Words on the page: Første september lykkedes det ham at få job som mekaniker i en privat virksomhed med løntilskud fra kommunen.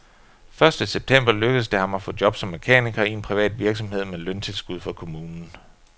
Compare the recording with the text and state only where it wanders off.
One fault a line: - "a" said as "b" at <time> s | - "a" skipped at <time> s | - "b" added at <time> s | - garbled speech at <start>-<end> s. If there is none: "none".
none